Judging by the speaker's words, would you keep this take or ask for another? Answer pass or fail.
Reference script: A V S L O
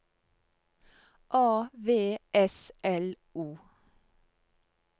pass